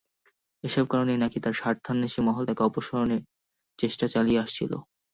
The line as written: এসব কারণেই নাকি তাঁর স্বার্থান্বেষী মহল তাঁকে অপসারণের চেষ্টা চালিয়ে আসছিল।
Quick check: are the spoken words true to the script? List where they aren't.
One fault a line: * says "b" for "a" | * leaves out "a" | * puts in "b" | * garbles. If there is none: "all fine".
all fine